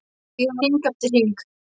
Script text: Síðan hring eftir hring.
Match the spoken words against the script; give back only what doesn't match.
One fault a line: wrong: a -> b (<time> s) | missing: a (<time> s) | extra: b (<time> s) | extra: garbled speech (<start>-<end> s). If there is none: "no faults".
no faults